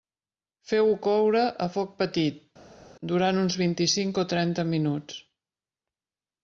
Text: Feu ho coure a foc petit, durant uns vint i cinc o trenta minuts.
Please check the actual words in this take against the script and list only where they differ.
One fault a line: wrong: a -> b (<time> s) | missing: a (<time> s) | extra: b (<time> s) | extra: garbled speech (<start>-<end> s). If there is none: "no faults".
no faults